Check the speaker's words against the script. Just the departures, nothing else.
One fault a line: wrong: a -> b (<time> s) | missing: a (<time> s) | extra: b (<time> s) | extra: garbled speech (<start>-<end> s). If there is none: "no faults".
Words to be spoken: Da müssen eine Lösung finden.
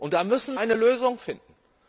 no faults